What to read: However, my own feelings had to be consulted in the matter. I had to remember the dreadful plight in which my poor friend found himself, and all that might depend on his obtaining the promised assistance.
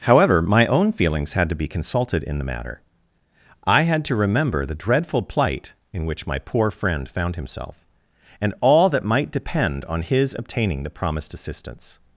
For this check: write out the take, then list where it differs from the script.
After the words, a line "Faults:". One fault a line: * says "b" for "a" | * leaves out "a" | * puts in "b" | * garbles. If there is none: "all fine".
However, my own feelings had to be consulted in the matter. I had to remember the dreadful plight in which my poor friend found himself, and all that might depend on his obtaining the promised assistance.
Faults:
all fine